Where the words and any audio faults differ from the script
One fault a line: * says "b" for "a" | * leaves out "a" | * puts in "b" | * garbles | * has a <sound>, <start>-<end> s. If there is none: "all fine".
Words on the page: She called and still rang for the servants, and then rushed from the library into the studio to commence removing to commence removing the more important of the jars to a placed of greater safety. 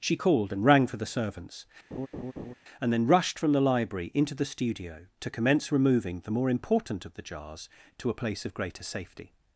* leaves out "still"
* has a laugh, 1.9-2.5 s
* leaves out "to commence removing"
* says "place" for "placed"